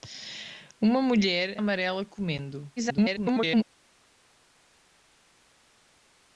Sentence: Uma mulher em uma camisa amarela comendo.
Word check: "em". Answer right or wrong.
wrong